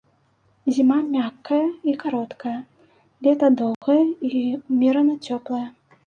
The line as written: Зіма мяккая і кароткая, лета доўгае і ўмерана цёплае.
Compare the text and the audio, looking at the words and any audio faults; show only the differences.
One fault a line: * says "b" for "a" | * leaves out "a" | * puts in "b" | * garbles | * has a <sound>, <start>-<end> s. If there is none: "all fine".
* has a dropout, 3.7-3.8 s